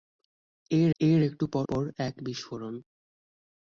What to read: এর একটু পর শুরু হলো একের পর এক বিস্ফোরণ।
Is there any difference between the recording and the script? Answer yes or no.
yes